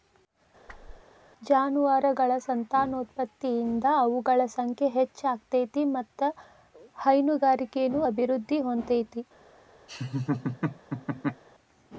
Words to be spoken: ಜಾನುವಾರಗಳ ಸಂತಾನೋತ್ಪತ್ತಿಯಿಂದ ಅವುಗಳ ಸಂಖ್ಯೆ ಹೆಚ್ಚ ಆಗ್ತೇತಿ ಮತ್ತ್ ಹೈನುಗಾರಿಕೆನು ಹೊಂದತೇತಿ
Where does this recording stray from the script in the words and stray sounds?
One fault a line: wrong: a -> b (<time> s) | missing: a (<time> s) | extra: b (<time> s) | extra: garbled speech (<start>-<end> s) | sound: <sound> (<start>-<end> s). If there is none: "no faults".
sound: whoosh (0.7-1.0 s)
extra: ಅಭಿವೃದ್ಧಿ (8.1 s)
sound: laugh (9.9-11.4 s)